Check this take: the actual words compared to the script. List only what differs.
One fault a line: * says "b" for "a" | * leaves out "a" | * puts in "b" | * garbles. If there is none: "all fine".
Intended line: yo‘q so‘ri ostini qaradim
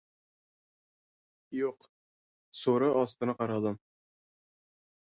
all fine